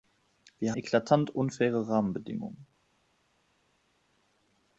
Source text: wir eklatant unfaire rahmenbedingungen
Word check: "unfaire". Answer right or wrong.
right